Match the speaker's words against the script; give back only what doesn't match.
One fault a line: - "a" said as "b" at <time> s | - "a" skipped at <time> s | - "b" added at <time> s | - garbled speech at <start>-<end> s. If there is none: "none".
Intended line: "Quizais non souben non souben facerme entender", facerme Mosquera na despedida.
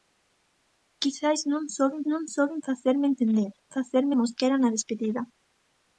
none